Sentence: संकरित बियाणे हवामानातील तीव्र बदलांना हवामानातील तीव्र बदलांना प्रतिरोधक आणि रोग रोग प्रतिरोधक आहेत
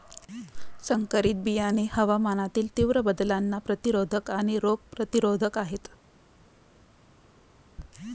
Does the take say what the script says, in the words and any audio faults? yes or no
no